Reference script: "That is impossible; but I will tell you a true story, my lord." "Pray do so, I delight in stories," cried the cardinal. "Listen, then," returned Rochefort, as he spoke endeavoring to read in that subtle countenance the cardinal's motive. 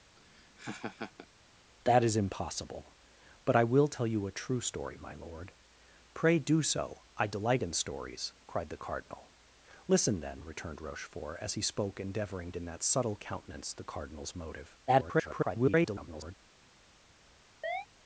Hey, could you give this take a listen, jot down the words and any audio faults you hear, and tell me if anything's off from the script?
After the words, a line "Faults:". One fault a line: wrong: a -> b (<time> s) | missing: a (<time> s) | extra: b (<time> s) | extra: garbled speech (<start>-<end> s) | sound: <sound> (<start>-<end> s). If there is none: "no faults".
"That is impossible; but I will tell you a true story, my lord." "Pray do so, I delight in stories," cried the cardinal. "Listen, then," returned Rochefort, as he spoke endeavoring in that subtle countenance the cardinal's motive. [garbled]
Faults:
sound: laugh (0.2-1.3 s)
missing: to read (12.5 s)
extra: garbled speech (14.9-16.4 s)
sound: chirp (17.6-17.9 s)